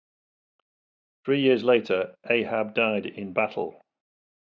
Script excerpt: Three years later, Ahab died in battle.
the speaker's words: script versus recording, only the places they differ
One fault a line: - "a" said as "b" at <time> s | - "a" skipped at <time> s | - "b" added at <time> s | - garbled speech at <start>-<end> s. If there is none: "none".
none